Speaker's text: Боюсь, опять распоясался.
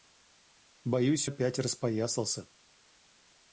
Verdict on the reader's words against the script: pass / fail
pass